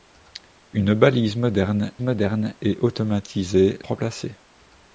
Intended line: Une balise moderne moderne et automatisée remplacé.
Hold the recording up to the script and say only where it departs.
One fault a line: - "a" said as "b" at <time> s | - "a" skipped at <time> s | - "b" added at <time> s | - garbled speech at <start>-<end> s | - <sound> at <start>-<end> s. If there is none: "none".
none